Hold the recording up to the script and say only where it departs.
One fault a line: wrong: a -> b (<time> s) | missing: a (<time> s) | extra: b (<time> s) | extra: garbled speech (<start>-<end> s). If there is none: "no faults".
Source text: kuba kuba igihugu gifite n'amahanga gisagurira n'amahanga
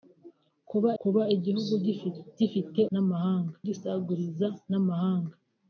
no faults